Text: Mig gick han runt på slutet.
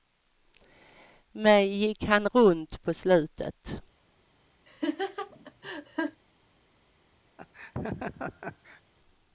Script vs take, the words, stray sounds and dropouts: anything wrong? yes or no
yes